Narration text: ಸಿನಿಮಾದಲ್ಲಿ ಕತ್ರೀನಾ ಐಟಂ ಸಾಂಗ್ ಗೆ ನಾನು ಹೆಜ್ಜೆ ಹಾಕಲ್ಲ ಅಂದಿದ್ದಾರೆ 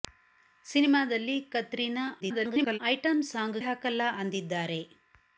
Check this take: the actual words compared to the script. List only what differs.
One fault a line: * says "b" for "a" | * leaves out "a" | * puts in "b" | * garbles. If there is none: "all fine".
* garbles
* leaves out "ಗೆ ನಾನು ಹೆಜ್ಜೆ"